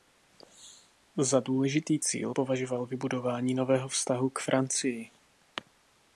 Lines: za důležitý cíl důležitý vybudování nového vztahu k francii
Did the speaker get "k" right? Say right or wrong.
right